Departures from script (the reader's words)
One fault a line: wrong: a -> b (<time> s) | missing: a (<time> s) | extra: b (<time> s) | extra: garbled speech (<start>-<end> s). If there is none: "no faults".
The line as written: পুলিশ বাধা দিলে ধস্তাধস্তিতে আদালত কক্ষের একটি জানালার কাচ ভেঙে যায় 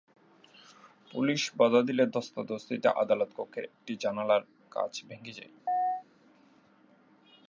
no faults